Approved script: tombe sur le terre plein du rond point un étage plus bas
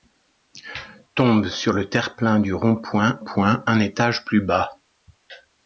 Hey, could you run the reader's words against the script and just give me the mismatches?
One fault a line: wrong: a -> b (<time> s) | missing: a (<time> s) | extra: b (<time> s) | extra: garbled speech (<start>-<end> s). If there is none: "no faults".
extra: point (3.2 s)